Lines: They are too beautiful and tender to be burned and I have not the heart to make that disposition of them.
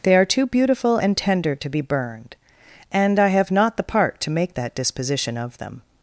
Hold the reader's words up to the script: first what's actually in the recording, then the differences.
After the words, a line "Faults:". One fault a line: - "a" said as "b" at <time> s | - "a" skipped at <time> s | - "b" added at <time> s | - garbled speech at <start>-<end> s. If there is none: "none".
They are too beautiful and tender to be burned and I have not the part to make that disposition of them.
Faults:
- "heart" said as "part" at 3.8 s